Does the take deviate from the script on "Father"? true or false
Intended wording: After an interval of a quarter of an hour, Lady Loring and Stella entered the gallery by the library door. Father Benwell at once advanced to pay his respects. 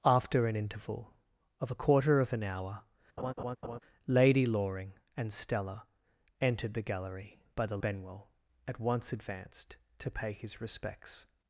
true